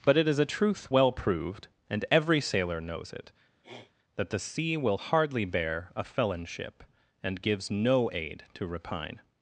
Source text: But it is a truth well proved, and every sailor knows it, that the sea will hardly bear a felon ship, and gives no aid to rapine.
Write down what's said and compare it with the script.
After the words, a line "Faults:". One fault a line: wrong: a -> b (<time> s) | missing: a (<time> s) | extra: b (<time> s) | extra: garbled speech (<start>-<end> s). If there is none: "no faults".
But it is a truth well proved, and every sailor knows it, that the sea will hardly bear a felon ship, and gives no aid to rapine.
Faults:
no faults